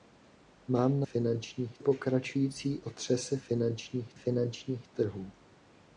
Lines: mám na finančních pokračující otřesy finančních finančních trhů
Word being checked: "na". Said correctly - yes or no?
yes